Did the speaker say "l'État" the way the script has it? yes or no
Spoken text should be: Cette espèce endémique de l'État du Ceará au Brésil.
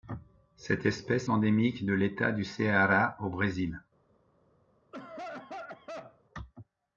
yes